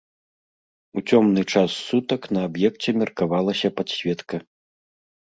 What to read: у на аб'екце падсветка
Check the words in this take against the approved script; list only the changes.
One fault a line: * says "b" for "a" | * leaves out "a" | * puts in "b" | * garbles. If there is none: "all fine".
* puts in "цёмны час сутак"
* puts in "меркавалася"